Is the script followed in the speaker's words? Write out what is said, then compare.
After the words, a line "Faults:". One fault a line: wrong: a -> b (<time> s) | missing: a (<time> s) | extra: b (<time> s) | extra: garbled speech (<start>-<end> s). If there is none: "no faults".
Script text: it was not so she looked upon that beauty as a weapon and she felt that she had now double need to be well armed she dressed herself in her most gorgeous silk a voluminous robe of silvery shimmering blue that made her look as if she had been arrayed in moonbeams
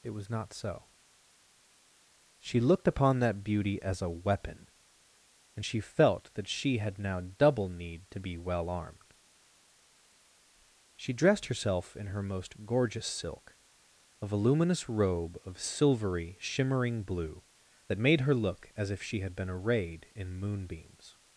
it was not so she looked upon that beauty as a weapon and she felt that she had now double need to be well armed she dressed herself in her most gorgeous silk a voluminous robe of silvery shimmering blue that made her look as if she had been arrayed in moonbeams
Faults:
no faults